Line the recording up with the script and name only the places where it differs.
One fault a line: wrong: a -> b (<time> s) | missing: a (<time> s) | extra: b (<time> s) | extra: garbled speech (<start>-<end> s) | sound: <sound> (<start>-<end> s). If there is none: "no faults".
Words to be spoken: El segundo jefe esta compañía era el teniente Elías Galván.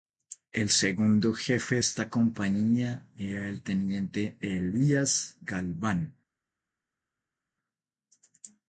no faults